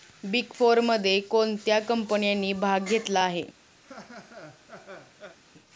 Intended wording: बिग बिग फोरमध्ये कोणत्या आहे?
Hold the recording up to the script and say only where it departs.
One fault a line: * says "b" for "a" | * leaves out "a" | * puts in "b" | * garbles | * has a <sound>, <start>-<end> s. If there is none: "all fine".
* leaves out "बिग"
* puts in "कंपन्यांनी भाग घेतला"
* has a laugh, 3.8-5.4 s